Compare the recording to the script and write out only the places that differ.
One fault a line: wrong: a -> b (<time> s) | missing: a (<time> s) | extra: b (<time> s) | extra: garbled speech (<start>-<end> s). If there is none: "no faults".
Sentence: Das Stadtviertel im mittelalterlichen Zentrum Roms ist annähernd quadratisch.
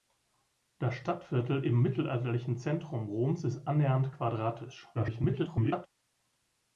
extra: garbled speech (4.9-5.9 s)